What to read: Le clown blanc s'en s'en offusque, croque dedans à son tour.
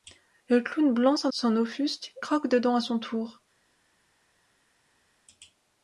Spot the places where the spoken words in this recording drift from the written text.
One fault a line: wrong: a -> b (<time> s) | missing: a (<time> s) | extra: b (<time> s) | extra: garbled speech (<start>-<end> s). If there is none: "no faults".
no faults